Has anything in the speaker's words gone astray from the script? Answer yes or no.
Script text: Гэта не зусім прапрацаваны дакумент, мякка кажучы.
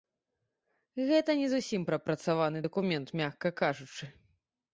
no